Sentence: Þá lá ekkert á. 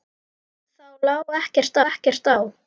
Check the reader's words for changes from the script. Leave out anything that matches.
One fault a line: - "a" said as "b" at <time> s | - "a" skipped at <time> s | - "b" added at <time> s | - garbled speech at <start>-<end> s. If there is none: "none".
- "ekkert" added at 1.9 s